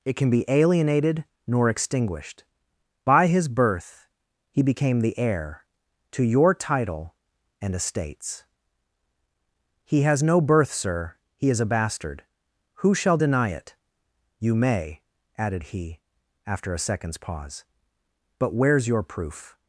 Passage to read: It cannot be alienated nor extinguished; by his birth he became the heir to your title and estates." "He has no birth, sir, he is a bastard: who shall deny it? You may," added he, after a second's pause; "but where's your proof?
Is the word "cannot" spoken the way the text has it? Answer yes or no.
no